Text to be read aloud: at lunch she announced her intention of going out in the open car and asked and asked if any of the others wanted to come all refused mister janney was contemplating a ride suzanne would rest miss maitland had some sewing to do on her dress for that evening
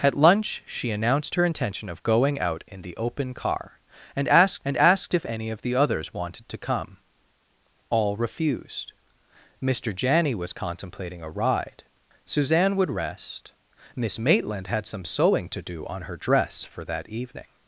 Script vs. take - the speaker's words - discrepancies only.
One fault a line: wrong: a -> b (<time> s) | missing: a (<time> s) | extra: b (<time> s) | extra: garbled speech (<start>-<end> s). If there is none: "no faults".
no faults